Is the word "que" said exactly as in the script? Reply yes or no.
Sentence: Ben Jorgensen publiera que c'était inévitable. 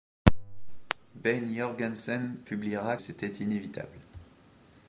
no